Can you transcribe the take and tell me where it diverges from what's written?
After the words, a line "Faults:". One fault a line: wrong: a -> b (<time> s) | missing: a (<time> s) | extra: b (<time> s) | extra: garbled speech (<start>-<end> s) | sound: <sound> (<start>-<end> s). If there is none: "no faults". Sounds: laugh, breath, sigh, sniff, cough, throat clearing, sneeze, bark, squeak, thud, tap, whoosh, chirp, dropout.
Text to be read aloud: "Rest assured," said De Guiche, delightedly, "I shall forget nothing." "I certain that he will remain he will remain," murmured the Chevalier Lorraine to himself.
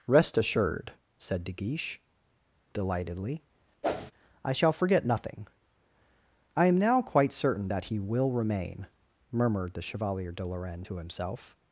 "Rest assured," said De Guiche, delightedly, "I shall forget nothing." "I am now quite certain that he will remain," murmured the Chevalier de Lorraine to himself.
Faults:
sound: whoosh (3.8-4.1 s)
wrong: certain that he will remain -> am now quite certain that (6.7 s)
extra: de (10.3 s)